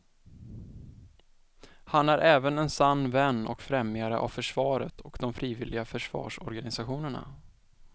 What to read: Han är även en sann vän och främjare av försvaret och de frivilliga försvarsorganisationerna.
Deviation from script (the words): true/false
false